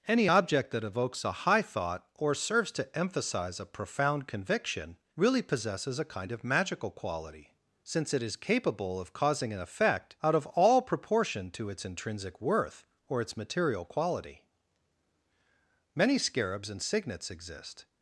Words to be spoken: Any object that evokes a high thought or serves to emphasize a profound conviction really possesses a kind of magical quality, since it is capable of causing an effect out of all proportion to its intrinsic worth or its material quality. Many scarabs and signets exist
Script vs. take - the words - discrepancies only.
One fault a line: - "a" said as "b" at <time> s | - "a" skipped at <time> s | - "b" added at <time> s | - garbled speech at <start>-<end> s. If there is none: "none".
none